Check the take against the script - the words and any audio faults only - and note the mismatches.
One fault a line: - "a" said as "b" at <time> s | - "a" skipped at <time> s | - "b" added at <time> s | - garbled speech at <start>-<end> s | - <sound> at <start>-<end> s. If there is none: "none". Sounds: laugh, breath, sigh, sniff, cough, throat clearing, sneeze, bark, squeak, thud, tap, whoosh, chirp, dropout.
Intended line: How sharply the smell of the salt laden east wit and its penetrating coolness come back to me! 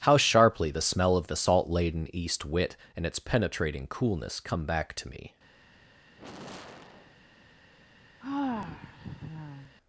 - sigh at 6.1-7.2 s
- sigh at 8.2-9.8 s